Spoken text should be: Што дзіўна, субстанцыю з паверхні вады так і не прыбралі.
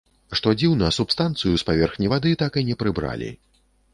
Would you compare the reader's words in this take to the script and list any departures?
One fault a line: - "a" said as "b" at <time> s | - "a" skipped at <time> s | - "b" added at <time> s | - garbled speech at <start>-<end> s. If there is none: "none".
none